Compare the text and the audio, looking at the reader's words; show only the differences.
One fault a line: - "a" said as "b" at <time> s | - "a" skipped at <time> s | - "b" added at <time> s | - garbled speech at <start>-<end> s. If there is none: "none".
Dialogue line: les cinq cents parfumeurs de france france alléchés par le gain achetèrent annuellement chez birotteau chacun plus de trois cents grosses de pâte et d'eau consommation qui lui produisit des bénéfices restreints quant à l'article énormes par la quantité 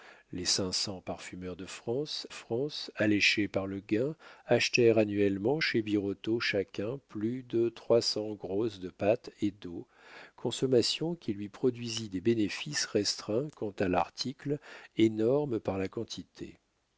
none